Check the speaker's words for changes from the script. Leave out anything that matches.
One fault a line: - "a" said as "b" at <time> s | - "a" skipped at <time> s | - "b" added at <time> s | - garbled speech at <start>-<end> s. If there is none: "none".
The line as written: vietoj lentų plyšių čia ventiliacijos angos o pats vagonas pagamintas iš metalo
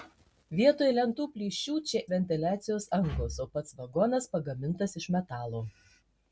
none